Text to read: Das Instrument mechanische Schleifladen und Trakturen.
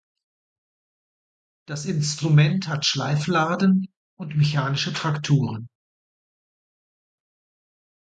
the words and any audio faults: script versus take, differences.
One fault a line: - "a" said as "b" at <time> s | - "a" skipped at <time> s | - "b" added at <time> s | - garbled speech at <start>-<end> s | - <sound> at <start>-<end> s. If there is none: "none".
- "mechanische" said as "hat" at 2.7 s
- "mechanische" added at 4.4 s